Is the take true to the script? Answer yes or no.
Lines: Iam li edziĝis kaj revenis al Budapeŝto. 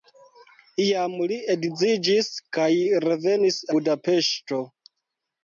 no